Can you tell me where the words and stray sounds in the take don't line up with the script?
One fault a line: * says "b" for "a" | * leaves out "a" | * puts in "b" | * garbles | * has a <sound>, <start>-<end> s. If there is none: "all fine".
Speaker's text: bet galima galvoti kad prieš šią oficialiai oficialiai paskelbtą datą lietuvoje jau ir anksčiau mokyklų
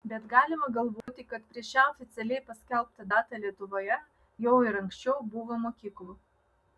* has a dropout, 1.0-1.1 s
* leaves out "oficialiai"
* puts in "buvo"